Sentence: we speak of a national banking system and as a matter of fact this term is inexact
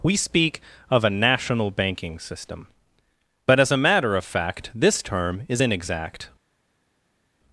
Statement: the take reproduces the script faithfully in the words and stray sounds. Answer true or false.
false